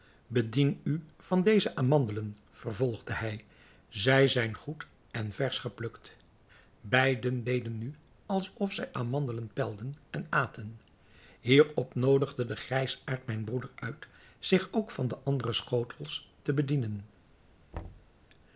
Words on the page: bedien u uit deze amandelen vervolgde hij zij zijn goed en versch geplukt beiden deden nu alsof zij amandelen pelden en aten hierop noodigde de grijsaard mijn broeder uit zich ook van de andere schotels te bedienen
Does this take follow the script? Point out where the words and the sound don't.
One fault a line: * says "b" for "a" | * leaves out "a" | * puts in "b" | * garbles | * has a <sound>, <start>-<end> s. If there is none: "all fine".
* says "van" for "uit"
* has a thud, 17.7-18.1 s